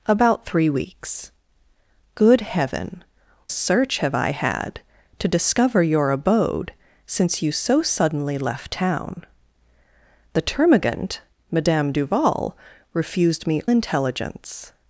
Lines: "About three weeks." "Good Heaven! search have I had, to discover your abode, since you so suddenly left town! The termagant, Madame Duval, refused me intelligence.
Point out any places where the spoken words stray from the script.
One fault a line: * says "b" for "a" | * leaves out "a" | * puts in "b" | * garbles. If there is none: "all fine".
all fine